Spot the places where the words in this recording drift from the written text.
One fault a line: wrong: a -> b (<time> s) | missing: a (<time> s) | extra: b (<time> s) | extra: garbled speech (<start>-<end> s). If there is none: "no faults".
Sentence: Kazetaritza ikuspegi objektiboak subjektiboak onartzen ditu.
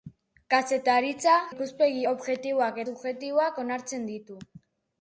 no faults